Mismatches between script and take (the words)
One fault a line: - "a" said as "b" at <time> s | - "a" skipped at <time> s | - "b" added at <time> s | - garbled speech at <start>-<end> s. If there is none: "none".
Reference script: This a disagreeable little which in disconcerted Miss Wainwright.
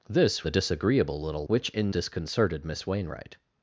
none